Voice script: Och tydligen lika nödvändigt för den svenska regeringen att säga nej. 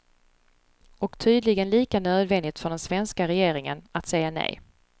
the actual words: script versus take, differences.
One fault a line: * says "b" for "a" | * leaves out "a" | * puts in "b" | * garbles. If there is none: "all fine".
all fine